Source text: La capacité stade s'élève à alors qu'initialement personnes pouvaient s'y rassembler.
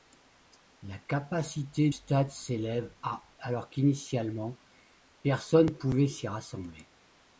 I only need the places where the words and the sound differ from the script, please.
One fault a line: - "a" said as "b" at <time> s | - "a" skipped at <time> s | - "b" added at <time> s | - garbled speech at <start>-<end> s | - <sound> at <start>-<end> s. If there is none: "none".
none